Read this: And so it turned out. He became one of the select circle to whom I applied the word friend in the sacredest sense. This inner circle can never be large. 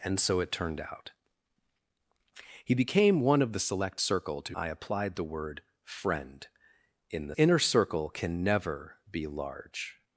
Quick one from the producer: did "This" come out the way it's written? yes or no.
no